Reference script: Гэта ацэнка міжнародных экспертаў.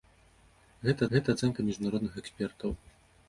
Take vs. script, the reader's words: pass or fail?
fail